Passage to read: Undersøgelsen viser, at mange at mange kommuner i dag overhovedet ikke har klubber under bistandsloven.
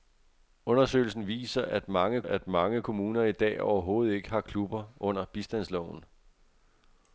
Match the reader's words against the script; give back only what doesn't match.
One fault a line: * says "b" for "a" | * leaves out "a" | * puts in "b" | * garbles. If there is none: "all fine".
all fine